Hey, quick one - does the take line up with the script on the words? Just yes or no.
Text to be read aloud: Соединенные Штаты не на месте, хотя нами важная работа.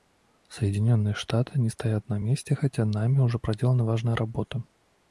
no